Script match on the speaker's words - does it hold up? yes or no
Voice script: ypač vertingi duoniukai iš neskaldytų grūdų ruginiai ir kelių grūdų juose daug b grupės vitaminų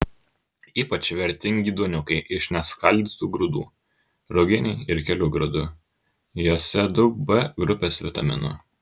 yes